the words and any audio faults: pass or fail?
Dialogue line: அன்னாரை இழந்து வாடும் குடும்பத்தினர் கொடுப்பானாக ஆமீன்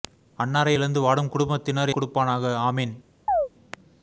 fail